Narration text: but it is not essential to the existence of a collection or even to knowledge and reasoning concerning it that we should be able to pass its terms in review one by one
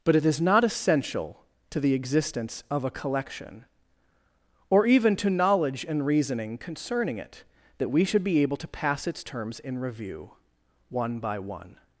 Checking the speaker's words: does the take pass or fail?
pass